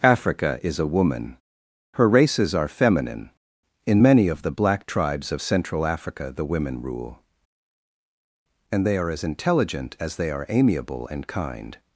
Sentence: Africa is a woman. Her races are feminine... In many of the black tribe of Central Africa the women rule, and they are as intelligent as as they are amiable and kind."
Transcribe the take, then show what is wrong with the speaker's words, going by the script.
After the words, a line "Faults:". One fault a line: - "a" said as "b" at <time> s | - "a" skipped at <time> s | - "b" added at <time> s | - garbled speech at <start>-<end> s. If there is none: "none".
Africa is a woman. Her races are feminine... In many of the black tribes of Central Africa the women rule, and they are as intelligent as they are amiable and kind."
Faults:
- "tribe" said as "tribes" at 4.9 s
- "as" skipped at 10.2 s